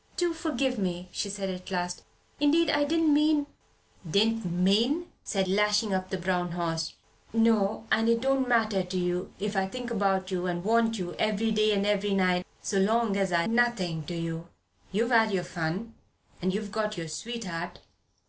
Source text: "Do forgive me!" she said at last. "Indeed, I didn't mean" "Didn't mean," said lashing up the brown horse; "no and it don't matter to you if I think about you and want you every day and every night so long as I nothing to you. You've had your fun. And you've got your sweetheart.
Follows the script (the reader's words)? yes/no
yes